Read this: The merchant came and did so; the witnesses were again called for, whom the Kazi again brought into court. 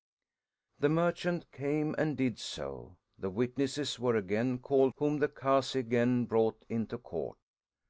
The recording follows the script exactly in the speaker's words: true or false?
false